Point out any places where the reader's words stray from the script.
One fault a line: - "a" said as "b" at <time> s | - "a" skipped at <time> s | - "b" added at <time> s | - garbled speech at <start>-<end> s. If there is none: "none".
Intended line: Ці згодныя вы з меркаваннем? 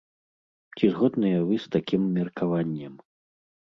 - "такім" added at 1.8 s